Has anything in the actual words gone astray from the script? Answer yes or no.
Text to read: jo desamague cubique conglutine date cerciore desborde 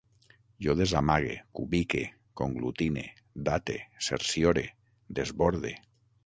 no